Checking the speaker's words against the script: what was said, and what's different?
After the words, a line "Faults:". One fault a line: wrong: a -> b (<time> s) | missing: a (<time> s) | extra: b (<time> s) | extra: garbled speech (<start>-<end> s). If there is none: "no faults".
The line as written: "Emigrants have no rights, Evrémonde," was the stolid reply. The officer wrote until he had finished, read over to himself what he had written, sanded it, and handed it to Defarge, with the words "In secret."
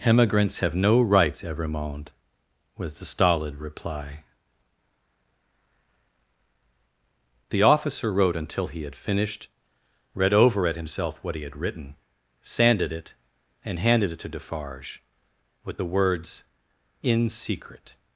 "Emigrants have no rights, Evrémonde," was the stolid reply. The officer wrote until he had finished, read over at himself what he had written, sanded it, and handed it to Defarge, with the words "In secret."
Faults:
wrong: to -> at (10.7 s)